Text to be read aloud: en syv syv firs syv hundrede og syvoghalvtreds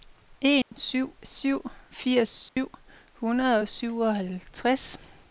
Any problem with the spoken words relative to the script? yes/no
no